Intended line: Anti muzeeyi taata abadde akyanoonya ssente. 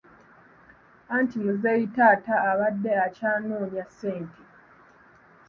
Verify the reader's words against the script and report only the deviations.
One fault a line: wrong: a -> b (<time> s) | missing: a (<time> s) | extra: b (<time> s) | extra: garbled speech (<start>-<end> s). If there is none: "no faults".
no faults